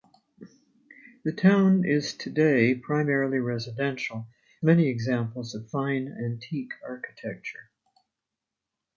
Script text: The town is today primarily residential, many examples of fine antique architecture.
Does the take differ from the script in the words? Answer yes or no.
no